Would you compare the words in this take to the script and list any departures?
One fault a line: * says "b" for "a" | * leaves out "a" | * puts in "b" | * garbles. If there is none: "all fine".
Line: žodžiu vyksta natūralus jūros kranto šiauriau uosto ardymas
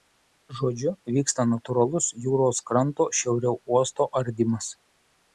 all fine